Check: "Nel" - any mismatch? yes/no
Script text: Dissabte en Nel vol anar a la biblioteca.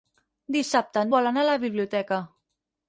yes